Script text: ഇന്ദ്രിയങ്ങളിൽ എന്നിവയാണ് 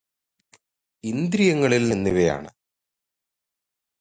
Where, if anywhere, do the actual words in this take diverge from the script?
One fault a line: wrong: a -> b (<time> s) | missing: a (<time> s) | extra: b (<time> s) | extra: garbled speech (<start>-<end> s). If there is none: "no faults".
no faults